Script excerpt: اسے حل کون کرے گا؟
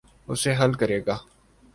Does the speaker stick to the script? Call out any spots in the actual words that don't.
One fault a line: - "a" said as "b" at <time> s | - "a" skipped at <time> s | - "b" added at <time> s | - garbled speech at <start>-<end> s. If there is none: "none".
- "کون" skipped at 0.7 s